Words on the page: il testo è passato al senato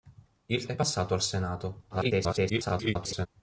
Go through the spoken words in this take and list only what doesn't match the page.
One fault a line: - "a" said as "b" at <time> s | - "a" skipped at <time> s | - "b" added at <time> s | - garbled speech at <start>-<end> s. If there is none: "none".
- "testo" skipped at 0.7 s
- garbled speech at 1.9-3.3 s